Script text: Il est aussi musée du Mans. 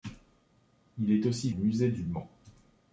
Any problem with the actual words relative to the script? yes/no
no